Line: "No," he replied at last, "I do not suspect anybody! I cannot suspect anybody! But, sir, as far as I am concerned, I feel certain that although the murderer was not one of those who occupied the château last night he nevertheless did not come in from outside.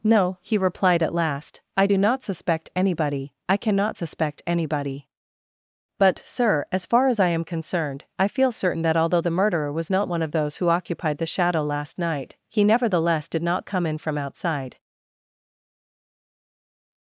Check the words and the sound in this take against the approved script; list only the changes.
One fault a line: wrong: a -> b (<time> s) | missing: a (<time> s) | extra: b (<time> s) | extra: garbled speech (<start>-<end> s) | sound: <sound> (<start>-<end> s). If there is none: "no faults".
wrong: château -> shadow (11.3 s)